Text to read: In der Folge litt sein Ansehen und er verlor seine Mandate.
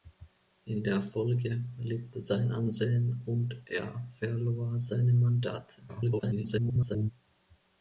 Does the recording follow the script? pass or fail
fail